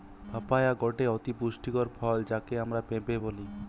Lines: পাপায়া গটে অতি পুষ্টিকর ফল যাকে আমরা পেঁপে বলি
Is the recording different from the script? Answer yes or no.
no